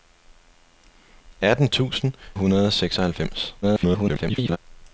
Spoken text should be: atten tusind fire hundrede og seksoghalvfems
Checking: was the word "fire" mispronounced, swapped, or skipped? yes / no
yes